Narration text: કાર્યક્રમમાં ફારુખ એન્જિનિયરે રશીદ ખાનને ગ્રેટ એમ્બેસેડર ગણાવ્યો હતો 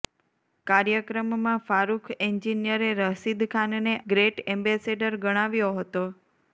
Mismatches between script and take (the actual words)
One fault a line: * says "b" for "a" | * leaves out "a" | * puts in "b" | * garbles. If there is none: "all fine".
all fine